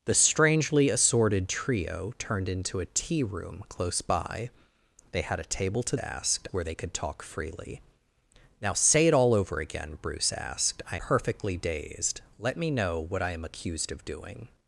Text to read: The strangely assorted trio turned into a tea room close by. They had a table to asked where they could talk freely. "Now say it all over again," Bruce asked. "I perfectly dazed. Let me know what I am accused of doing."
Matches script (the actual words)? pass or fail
pass